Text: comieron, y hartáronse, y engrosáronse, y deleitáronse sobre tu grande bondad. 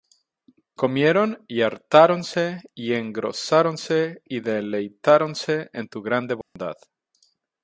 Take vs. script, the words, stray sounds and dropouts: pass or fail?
fail